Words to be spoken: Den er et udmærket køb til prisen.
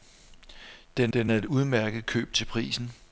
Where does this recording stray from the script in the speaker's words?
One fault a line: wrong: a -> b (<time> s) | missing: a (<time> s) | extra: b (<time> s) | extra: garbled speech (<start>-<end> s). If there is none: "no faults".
extra: den (1.1 s)